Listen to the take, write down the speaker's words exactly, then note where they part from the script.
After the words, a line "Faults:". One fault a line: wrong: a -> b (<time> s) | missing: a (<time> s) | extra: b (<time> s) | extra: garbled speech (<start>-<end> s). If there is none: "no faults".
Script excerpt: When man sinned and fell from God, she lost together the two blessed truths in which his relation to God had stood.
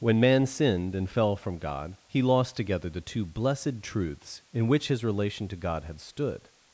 When man sinned and fell from God, he lost together the two blessed truths in which his relation to God had stood.
Faults:
wrong: she -> he (2.1 s)